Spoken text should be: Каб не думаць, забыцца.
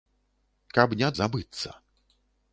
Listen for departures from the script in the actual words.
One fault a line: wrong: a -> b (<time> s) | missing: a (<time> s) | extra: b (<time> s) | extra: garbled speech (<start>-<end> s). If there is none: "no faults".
missing: думаць (1.1 s)